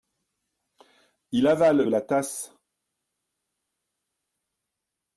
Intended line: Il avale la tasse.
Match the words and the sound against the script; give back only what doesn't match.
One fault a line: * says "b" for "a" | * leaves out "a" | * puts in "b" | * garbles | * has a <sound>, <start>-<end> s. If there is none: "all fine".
all fine